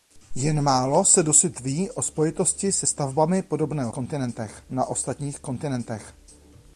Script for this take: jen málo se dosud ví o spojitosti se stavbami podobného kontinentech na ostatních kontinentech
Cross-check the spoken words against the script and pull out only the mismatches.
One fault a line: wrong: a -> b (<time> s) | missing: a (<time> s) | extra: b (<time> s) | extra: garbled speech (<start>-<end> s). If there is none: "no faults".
no faults